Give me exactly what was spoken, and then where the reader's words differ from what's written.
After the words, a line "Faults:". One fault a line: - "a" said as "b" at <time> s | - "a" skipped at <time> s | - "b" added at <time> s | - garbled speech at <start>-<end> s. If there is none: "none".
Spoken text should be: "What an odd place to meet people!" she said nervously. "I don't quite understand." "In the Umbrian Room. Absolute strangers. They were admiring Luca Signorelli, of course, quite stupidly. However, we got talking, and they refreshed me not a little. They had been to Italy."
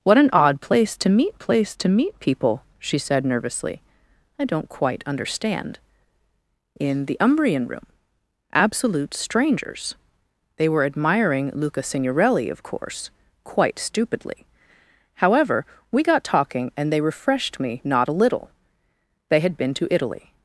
"What an odd place to meet place to meet people!" she said nervously. "I don't quite understand." "In the Umbrian Room. Absolute strangers. They were admiring Luca Signorelli, of course, quite stupidly. However, we got talking, and they refreshed me not a little. They had been to Italy."
Faults:
- "place to meet" added at 1.4 s